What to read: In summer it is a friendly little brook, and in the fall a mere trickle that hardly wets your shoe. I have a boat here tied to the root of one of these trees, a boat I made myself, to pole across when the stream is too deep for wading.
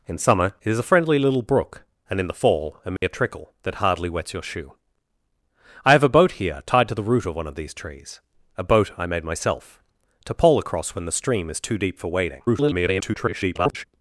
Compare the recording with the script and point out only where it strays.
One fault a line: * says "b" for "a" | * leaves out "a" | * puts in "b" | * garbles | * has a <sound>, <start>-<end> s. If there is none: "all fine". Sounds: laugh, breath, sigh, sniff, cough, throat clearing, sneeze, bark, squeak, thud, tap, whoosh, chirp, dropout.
* has a dropout, 3.0-3.0 s
* garbles